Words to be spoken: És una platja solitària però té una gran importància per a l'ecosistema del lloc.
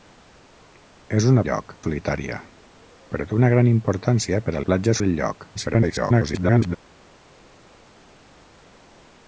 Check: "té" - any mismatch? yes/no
no